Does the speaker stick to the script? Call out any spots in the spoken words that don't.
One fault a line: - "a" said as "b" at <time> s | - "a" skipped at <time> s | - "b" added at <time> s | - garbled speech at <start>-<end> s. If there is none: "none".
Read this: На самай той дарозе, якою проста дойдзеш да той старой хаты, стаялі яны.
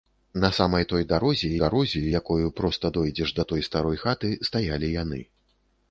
- "дарозе" added at 1.6 s